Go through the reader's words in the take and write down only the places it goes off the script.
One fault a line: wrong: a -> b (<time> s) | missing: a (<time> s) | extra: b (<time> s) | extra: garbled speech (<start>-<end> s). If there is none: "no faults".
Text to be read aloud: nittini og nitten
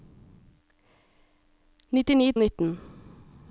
no faults